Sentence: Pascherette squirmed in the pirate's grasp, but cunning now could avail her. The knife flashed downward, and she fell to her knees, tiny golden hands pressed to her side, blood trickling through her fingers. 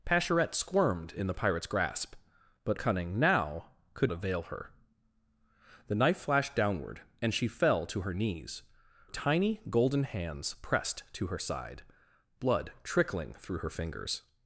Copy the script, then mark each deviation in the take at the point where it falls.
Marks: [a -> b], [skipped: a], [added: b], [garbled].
Pascherette squirmed in the pirate's grasp, but cunning now could avail her. The knife flashed downward, and she fell to her knees, tiny golden hands pressed to her side, blood trickling through her fingers.